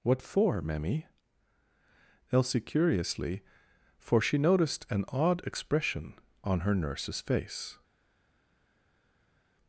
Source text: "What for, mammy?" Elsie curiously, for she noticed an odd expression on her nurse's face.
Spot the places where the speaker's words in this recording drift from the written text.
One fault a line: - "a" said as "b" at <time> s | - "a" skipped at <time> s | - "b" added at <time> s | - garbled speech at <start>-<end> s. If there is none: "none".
none